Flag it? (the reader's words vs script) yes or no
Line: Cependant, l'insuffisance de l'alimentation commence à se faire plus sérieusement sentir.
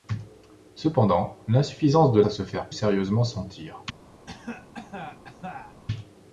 yes